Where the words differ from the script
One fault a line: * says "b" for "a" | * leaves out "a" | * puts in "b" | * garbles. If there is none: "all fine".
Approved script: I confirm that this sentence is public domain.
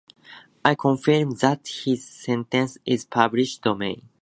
all fine